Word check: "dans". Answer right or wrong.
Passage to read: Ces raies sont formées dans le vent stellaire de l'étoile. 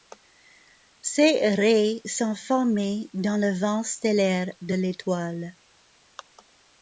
right